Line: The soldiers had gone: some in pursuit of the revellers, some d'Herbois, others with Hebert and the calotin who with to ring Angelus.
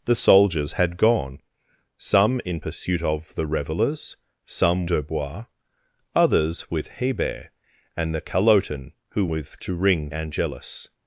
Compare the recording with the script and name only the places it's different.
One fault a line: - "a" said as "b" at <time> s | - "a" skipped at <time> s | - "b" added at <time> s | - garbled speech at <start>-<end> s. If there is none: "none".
none